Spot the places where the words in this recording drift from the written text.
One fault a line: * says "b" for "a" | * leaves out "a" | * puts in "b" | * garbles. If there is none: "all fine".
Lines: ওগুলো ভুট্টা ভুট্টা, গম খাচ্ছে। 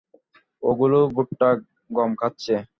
* leaves out "ভুট্টা"